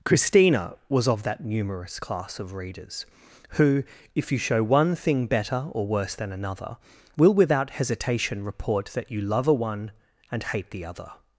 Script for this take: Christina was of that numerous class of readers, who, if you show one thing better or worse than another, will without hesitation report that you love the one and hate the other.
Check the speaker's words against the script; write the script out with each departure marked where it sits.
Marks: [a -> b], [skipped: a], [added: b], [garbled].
Christina was of that numerous class of readers, who, if you show one thing better or worse than another, will without hesitation report that you love [the -> a] one and hate the other.